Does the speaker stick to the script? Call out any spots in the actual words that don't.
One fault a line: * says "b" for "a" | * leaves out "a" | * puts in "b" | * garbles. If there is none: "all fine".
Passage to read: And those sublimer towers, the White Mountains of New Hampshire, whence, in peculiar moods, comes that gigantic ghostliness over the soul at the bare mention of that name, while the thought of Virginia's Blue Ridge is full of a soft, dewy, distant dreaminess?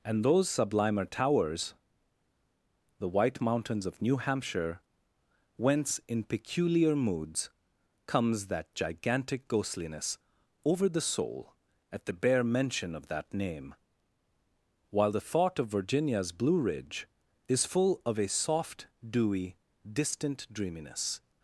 all fine